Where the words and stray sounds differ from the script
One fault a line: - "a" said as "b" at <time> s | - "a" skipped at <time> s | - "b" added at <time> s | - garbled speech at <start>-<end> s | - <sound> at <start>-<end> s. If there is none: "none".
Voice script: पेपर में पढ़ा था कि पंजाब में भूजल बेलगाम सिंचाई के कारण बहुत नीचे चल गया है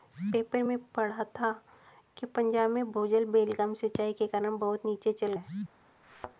- "गया" skipped at 5.3 s
- thud at 6.0-6.4 s